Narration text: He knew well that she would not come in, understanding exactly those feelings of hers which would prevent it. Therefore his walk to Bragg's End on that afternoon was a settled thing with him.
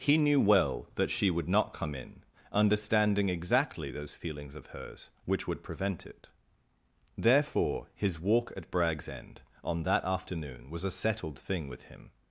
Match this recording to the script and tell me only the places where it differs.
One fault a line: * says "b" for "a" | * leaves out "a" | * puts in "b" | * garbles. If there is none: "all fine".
* says "at" for "to"